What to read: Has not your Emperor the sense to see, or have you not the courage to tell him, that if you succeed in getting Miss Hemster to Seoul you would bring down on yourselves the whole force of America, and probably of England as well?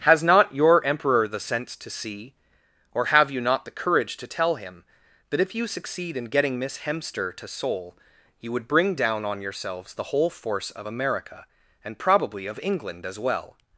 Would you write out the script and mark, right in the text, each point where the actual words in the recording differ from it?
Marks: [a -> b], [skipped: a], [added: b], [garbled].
Has not your Emperor the sense to see, or have you not the courage to tell him, that if you succeed in getting Miss Hemster to Seoul you would bring down on yourselves the whole force of America, and probably of England as well?